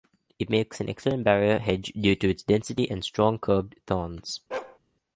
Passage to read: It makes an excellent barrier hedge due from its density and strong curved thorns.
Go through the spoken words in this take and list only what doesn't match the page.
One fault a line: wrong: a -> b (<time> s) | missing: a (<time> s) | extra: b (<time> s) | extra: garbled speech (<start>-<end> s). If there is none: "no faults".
wrong: from -> to (2.1 s)